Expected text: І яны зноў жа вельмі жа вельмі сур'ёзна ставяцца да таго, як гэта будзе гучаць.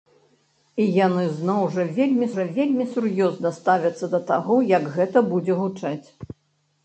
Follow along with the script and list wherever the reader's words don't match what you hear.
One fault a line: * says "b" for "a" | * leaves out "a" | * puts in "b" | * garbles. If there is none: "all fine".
all fine